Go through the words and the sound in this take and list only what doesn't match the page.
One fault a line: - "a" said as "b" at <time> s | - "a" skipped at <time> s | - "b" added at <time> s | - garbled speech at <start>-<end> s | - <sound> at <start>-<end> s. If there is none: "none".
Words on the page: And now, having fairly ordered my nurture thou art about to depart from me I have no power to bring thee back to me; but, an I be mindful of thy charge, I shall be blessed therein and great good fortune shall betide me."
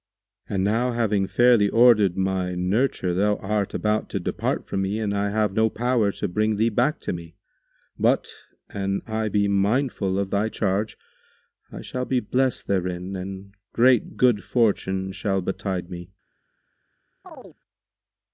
- "and" added at 5.0 s
- chirp at 17.2-17.6 s